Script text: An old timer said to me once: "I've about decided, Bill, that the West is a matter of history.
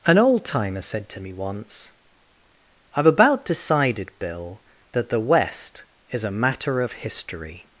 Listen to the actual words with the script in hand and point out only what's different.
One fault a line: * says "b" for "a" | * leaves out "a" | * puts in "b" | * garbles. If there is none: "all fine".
all fine